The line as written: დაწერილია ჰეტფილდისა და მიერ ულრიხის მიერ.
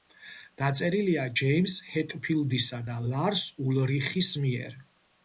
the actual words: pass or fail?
fail